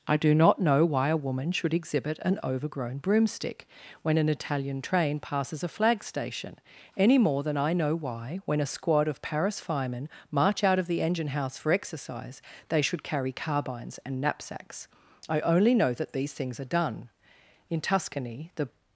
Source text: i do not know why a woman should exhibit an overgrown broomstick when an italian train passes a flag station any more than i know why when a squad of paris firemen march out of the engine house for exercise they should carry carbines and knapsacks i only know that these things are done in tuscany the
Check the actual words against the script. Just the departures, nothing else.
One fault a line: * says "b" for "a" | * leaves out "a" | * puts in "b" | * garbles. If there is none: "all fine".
all fine